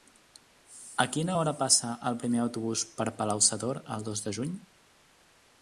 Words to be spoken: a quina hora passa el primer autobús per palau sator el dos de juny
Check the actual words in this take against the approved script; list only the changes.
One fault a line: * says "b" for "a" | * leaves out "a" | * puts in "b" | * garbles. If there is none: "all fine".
all fine